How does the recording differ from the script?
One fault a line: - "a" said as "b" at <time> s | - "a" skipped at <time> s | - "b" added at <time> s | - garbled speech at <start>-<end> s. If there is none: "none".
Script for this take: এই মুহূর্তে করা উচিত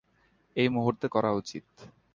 none